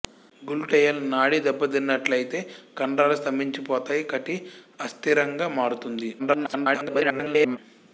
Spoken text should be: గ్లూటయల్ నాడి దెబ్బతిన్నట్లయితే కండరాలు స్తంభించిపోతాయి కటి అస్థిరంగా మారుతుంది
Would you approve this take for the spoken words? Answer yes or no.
no